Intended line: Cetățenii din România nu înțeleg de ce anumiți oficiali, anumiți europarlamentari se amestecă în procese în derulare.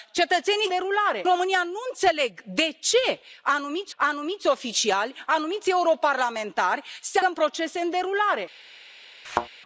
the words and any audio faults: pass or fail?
fail